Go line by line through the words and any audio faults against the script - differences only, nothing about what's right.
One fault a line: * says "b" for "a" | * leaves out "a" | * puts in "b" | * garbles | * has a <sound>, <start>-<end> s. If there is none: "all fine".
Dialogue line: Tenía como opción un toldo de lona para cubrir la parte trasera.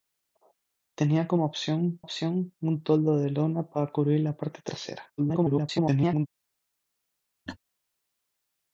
* puts in "opción"
* garbles
* has a laugh, 7.5-7.6 s